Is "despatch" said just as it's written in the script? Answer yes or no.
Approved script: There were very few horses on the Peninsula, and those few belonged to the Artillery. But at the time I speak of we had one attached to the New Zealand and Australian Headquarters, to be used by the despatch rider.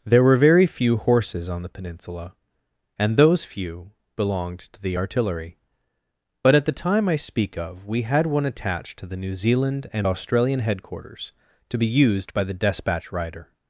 yes